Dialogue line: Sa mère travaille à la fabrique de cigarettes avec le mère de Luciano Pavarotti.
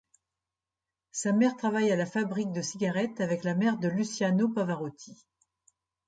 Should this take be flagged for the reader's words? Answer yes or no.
yes